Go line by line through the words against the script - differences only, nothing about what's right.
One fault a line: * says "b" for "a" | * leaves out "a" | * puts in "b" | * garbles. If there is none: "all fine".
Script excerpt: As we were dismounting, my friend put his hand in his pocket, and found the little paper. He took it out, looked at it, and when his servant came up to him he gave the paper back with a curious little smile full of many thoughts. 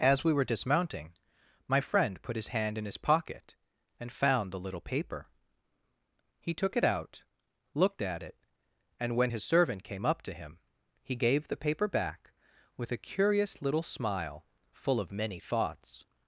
all fine